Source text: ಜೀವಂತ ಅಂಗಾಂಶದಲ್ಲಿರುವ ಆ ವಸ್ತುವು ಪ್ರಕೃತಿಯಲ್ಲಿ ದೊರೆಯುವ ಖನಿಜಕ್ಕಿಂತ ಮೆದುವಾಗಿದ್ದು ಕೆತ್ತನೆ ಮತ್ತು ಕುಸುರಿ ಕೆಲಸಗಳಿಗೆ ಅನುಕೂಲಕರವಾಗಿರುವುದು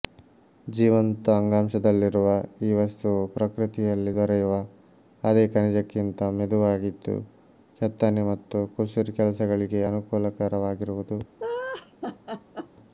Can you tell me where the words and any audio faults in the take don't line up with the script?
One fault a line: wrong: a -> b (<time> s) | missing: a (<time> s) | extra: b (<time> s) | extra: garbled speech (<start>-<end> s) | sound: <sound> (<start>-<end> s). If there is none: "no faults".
wrong: ಆ -> ಈ (2.6 s)
extra: ಅದೇ (5.2 s)
sound: laugh (11.4-12.7 s)